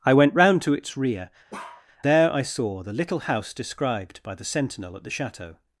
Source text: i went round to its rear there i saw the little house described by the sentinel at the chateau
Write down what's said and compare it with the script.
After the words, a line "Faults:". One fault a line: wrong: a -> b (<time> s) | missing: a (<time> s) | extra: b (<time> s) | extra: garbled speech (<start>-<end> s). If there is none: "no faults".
i went round to its rear there i saw the little house described by the sentinel at the chateau
Faults:
no faults